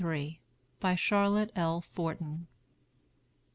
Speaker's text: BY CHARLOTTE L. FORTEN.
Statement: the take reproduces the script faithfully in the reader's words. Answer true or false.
true